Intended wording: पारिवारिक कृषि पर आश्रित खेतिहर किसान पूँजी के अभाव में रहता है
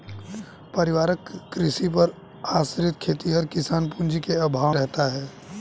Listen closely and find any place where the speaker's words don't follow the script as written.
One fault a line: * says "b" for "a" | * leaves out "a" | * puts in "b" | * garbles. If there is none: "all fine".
* leaves out "में"